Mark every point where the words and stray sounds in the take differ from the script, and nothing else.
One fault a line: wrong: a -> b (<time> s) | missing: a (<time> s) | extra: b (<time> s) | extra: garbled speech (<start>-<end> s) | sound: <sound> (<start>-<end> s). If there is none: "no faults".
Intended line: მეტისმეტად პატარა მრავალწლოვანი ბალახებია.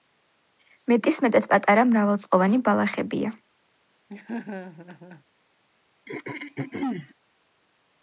sound: laugh (4.1-5.2 s)
sound: throat clearing (6.1-7.1 s)